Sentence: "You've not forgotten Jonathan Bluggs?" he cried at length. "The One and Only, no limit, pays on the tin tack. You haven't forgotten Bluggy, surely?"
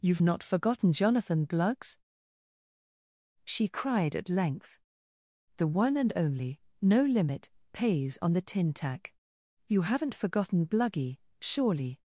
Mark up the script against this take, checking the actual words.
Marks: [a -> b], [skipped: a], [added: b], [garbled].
"You've not forgotten Jonathan Bluggs?" [he -> she] cried at length. "The One and Only, no limit, pays on the tin tack. You haven't forgotten Bluggy, surely?"